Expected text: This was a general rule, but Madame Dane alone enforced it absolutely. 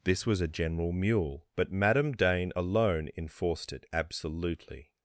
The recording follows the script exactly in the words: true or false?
false